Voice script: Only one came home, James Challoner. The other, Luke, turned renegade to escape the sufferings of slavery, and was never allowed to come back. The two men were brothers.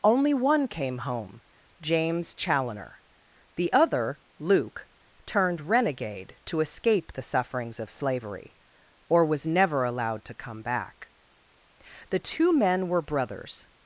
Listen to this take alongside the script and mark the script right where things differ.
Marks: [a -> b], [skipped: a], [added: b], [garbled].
Only one came home, James Challoner. The other, Luke, turned renegade to escape the sufferings of slavery, [and -> or] was never allowed to come back. The two men were brothers.